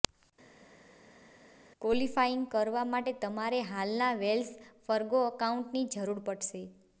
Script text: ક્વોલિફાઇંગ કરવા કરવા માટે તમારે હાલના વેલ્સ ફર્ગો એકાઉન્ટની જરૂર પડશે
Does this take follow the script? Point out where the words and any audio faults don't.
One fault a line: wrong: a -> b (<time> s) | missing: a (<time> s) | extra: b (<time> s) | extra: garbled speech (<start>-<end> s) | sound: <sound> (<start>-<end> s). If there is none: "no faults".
missing: કરવા (2.8 s)